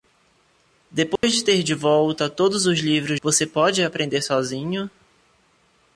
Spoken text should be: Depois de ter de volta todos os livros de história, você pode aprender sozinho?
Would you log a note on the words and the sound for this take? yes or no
yes